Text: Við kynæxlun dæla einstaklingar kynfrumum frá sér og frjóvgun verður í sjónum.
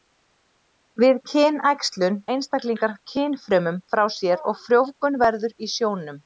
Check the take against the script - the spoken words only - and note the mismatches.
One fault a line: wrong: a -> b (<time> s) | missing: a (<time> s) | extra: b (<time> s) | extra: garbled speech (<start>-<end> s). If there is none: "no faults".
missing: dæla (2.2 s)